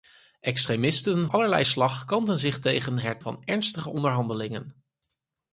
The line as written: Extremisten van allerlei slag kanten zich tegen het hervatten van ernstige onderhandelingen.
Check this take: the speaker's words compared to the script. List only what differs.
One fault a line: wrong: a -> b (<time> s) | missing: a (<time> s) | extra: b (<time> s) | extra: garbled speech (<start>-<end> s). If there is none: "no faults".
missing: van (1.3 s)
missing: hervatten (3.2 s)